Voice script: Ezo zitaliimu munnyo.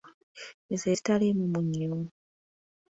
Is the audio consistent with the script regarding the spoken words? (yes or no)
yes